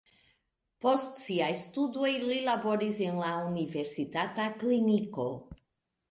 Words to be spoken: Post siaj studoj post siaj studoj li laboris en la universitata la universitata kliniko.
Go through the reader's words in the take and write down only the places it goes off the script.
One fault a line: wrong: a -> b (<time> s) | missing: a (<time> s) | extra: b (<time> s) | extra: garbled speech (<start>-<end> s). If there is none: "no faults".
missing: post siaj studoj (2.1 s)
missing: la universitata (4.5 s)